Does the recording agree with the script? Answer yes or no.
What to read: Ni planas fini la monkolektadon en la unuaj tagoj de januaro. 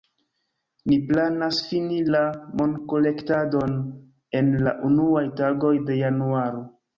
yes